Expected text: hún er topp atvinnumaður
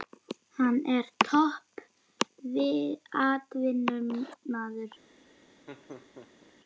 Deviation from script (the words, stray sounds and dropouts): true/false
true